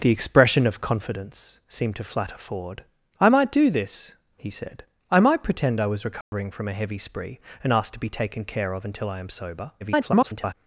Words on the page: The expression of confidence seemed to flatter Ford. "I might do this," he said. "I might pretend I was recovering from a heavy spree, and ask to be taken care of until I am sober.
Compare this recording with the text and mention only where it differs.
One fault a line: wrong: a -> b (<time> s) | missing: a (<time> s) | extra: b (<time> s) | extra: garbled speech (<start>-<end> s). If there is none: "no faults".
extra: garbled speech (9.8-10.5 s)